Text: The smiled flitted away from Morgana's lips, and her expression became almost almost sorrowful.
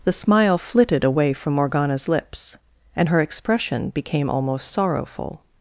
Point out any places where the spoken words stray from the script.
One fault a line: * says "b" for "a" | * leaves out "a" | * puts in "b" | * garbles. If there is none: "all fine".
* says "smile" for "smiled"
* leaves out "almost"